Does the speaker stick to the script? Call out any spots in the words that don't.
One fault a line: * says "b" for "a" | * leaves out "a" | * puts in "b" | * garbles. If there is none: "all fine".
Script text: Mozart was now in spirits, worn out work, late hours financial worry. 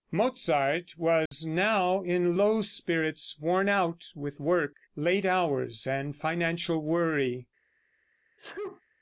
* puts in "low"
* puts in "with"
* puts in "and"